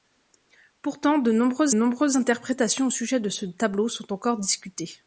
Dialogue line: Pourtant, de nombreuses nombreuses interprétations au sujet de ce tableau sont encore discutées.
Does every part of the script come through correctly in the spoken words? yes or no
yes